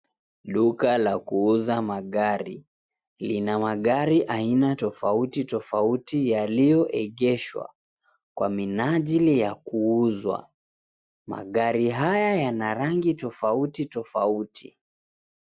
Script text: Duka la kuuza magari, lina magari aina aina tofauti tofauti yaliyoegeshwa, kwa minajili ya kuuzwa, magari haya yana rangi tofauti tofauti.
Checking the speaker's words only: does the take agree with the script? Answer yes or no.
no